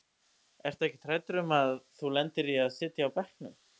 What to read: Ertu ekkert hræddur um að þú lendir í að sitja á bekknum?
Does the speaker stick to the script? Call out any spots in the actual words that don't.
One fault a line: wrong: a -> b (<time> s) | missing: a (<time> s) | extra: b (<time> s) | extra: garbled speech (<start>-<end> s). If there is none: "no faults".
no faults